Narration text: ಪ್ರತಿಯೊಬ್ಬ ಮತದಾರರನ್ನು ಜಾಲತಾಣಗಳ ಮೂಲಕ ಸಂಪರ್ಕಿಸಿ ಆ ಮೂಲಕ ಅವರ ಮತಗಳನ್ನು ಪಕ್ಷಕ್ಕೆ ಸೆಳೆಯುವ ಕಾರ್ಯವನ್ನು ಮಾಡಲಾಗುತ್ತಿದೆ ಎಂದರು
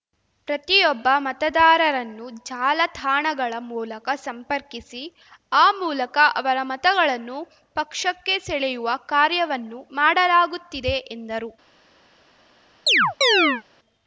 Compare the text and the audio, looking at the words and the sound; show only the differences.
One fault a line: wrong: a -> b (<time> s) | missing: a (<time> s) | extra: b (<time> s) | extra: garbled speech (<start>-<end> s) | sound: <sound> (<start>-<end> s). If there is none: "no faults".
sound: chirp (12.9-13.6 s)